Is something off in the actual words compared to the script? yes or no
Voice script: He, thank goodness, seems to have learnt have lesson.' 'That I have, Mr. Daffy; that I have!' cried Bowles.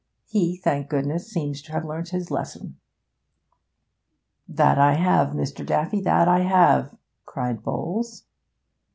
yes